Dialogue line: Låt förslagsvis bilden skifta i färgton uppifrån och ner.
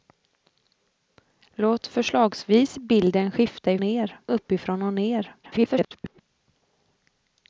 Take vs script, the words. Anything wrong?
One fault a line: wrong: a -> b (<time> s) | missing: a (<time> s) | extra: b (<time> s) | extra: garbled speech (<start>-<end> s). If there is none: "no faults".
wrong: färgton -> ner (3.8 s)
extra: garbled speech (5.4-6.2 s)